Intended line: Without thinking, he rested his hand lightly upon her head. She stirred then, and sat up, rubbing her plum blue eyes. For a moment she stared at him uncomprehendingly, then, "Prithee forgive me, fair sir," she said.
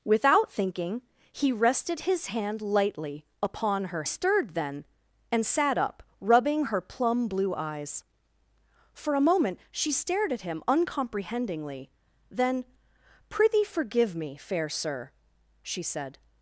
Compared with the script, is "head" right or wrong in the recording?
wrong